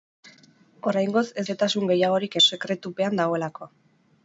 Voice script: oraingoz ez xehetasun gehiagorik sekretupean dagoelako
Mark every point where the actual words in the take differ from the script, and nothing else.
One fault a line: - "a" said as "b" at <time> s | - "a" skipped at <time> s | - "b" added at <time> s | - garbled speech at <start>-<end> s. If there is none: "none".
none